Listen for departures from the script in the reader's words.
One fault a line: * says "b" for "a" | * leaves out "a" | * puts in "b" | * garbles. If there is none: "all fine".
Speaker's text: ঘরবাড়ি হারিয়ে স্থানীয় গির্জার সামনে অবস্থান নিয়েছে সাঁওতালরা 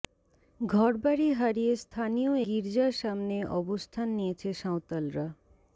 all fine